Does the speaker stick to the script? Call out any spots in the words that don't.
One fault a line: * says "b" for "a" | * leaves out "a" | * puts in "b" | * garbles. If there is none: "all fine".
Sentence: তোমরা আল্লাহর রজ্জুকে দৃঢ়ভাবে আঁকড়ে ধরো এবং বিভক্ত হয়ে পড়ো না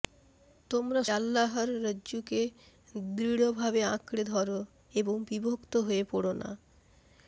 all fine